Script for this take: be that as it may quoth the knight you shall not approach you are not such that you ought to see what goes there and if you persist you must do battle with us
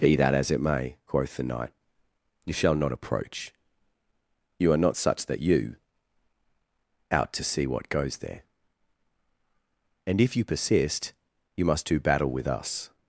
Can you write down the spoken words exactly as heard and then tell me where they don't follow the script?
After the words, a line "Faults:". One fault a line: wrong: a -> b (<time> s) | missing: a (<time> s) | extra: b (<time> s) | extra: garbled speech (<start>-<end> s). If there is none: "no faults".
be that as it may quoth the knight you shall not approach you are not such that you out to see what goes there and if you persist you must do battle with us
Faults:
wrong: ought -> out (7.1 s)